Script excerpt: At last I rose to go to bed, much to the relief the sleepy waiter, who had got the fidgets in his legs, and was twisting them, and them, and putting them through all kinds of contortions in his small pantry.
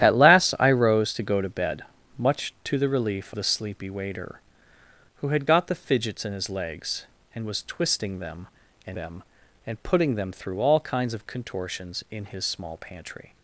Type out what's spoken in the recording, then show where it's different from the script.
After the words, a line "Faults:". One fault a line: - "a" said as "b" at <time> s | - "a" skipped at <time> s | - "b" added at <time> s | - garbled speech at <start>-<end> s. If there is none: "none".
At last I rose to go to bed, much to the relief the sleepy waiter, who had got the fidgets in his legs, and was twisting them, and them, and putting them through all kinds of contortions in his small pantry.
Faults:
none